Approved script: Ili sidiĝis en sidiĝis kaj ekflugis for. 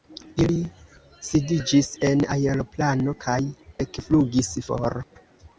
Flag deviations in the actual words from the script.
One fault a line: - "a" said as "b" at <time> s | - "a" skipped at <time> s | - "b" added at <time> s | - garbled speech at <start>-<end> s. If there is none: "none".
- "sidiĝis" said as "aeroplano" at 2.4 s